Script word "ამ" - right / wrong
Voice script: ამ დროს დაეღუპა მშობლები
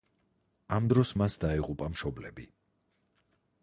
right